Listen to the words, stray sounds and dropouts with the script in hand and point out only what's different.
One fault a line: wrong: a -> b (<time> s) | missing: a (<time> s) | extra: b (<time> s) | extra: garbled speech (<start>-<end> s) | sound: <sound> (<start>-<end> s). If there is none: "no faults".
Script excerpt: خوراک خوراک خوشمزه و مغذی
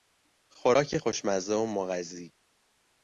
missing: خوراک (1.0 s)